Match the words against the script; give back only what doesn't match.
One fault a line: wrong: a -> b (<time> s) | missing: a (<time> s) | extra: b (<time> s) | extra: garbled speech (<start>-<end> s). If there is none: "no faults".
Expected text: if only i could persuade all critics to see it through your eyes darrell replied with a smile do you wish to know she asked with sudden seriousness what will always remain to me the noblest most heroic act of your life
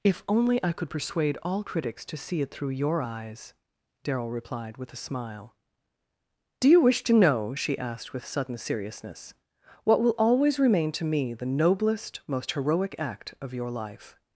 no faults